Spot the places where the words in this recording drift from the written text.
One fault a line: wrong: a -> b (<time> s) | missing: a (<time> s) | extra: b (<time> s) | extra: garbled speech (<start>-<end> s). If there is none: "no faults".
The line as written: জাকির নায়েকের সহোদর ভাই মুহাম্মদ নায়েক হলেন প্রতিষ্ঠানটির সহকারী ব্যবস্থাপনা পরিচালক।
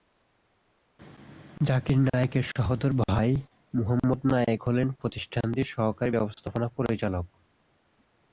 no faults